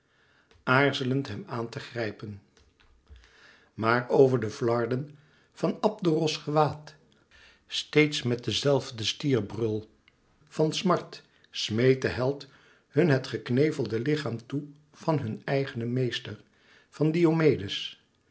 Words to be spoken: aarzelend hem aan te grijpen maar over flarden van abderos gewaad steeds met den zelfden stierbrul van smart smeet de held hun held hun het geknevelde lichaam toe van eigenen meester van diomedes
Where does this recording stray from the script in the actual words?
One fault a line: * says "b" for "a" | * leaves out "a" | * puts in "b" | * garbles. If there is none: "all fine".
* puts in "de"
* leaves out "held hun"
* puts in "hun"